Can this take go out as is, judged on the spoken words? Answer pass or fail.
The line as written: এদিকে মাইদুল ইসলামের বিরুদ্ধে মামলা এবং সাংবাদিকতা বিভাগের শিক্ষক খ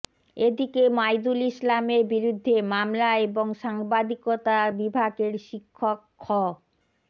pass